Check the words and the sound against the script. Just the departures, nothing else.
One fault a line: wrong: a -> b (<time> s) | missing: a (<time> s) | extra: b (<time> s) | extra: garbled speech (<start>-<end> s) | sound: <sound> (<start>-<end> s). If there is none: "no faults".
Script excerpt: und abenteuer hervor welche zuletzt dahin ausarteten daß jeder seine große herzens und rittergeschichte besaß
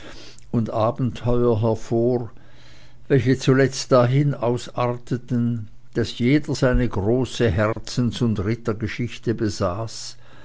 sound: dropout (7.7-7.8 s)